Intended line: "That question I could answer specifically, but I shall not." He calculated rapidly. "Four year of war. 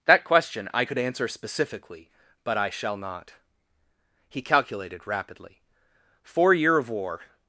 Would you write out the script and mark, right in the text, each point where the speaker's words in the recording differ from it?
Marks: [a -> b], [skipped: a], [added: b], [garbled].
"That question I could answer specifically, but I shall not." He calculated rapidly. "Four year of war.